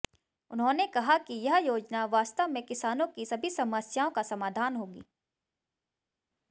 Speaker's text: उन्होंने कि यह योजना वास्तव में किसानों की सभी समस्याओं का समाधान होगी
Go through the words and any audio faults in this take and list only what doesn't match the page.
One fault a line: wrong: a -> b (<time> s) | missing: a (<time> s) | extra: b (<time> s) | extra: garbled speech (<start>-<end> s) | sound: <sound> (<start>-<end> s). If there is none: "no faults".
extra: कहा (0.9 s)